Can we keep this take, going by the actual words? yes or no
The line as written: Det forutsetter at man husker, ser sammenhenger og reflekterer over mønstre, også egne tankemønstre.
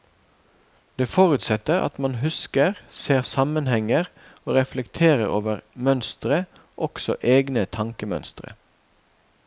yes